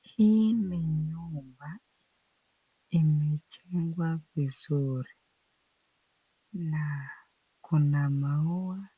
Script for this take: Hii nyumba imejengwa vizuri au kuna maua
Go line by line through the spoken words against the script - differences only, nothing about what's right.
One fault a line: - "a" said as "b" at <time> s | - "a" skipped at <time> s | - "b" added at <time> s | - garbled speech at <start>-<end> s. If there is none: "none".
- "ni" added at 0.5 s
- "au" said as "na" at 6.5 s